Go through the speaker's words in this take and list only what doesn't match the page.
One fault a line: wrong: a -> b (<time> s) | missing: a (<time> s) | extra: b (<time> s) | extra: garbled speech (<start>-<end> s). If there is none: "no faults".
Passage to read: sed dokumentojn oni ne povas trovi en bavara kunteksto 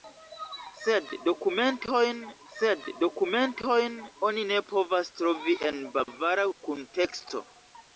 extra: sed dokumentojn (2.5 s)